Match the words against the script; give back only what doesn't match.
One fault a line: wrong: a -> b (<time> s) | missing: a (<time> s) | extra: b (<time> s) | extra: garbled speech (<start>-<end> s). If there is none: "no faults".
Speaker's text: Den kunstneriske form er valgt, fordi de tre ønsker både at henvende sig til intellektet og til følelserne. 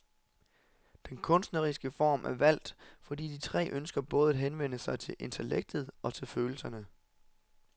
no faults